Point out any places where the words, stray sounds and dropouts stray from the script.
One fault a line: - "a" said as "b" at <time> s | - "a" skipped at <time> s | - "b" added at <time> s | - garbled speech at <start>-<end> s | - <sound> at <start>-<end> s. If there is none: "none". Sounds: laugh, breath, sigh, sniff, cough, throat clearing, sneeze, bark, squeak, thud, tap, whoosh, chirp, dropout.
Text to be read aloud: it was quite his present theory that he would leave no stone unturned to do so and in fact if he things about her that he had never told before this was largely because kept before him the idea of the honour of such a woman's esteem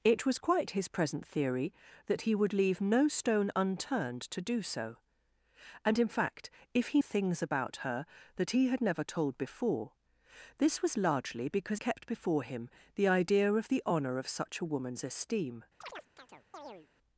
- chirp at 15.8-16.9 s